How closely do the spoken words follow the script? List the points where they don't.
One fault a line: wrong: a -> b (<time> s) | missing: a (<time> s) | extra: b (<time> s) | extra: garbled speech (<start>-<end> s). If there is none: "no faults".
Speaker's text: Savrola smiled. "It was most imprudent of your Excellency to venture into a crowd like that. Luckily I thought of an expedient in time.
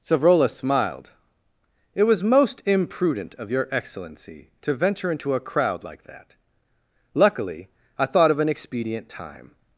missing: in (9.1 s)